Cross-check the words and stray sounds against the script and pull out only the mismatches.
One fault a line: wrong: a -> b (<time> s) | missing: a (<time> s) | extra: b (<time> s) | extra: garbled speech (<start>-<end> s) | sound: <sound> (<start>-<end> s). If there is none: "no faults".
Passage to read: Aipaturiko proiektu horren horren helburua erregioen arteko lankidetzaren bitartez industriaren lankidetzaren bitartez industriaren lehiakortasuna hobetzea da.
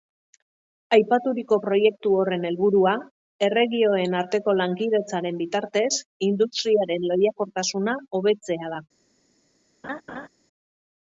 missing: horren (2.5 s)
missing: lankidetzaren bitartez industriaren (7.1 s)
sound: laugh (9.8-10.3 s)